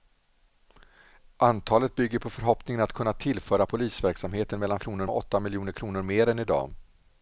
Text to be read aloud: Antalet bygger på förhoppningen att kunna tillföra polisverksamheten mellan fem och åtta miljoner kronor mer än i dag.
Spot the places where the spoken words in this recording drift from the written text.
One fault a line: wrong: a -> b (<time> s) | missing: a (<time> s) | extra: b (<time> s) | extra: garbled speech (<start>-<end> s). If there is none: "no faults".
wrong: fem -> kronor (4.8 s)